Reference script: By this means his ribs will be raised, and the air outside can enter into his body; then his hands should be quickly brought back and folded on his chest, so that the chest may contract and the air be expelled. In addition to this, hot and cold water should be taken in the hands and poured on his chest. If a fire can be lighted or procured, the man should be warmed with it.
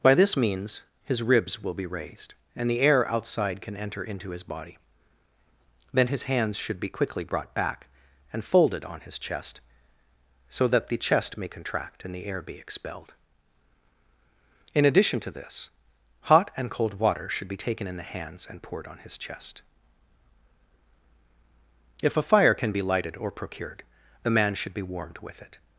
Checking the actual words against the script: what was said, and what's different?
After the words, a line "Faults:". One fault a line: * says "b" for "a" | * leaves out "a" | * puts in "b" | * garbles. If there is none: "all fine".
By this means his ribs will be raised, and the air outside can enter into his body; then his hands should be quickly brought back and folded on his chest, so that the chest may contract and the air be expelled. In addition to this, hot and cold water should be taken in the hands and poured on his chest. If a fire can be lighted or procured, the man should be warmed with it.
Faults:
all fine